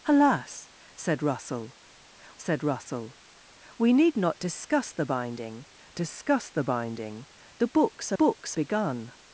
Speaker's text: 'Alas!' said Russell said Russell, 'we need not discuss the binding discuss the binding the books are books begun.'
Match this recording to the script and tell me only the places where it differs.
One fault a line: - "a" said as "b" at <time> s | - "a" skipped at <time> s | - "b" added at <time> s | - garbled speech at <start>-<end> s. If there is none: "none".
none